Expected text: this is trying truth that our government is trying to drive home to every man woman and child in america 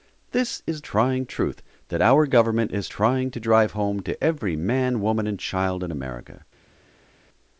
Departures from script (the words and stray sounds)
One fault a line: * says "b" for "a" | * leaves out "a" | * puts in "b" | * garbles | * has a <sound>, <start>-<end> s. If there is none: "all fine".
all fine